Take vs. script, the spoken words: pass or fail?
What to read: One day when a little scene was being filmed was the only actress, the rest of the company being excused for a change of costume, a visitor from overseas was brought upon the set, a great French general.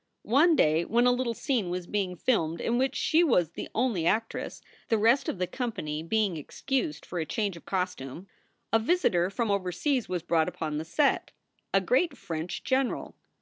fail